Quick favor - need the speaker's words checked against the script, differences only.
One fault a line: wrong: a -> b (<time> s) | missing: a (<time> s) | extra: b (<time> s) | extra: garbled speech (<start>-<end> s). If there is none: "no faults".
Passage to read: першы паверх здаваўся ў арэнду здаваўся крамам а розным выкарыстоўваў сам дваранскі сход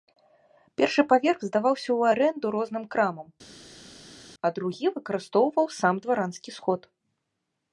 wrong: здаваўся -> розным (2.6 s)
wrong: розным -> другі (4.6 s)